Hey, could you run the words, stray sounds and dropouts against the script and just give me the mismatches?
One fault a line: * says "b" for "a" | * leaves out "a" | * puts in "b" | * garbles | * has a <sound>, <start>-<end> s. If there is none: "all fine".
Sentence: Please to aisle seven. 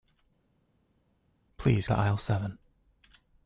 all fine